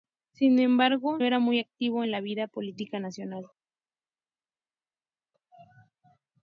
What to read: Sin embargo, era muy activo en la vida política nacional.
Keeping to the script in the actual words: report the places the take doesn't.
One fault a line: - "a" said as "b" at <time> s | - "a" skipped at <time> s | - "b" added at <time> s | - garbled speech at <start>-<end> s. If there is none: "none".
none